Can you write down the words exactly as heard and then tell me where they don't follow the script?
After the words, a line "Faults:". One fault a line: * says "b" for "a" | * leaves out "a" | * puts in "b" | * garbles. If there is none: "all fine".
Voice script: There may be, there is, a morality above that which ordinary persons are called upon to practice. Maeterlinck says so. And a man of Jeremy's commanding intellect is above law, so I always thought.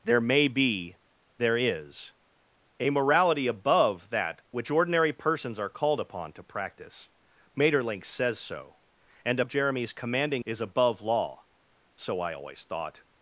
There may be, there is, a morality above that which ordinary persons are called upon to practice. Maeterlinck says so. And a of Jeremy's commanding is above law, so I always thought.
Faults:
* leaves out "man"
* leaves out "intellect"